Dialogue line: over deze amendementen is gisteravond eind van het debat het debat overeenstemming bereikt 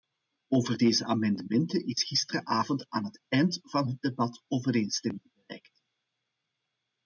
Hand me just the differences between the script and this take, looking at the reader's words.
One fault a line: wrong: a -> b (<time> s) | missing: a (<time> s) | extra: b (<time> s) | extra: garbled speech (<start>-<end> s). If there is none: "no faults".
extra: aan het (2.9 s)
missing: het debat (4.4 s)